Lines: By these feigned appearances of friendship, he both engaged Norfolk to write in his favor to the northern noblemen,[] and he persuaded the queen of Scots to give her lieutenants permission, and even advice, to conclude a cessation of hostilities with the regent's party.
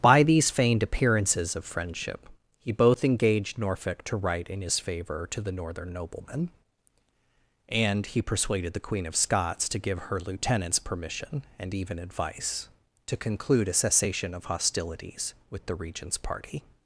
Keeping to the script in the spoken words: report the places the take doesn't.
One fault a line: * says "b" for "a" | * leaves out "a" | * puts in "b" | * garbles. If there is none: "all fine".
all fine